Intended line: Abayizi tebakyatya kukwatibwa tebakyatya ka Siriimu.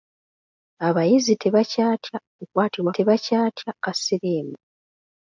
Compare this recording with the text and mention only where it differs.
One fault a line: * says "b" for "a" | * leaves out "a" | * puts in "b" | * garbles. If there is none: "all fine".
all fine